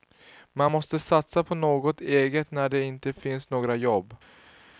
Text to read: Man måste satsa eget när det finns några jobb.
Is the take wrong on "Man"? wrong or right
right